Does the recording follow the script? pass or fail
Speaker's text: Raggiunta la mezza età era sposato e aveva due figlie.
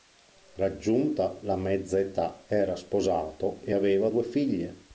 pass